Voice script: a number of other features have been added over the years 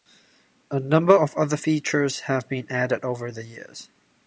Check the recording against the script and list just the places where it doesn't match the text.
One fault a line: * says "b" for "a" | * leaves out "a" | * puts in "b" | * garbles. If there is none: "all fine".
all fine